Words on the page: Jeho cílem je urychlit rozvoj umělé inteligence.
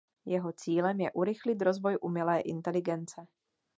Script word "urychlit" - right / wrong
right